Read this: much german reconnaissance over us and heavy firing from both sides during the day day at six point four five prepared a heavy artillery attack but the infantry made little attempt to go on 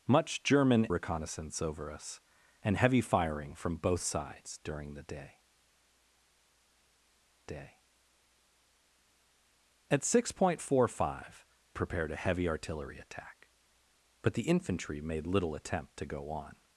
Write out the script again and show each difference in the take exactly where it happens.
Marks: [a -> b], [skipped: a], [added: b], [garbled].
much german reconnaissance over us and heavy firing from both sides during the day day at six point four five prepared a heavy artillery attack but the infantry made little attempt to go on